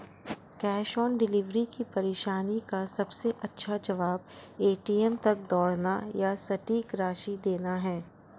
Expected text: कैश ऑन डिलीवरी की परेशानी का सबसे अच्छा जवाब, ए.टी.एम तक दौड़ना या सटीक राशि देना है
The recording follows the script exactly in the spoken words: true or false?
true